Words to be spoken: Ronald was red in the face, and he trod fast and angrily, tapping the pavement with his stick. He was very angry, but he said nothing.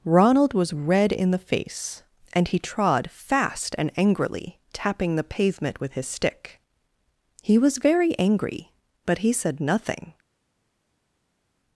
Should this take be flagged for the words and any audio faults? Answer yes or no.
no